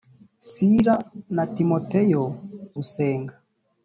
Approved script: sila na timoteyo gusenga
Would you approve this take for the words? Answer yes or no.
yes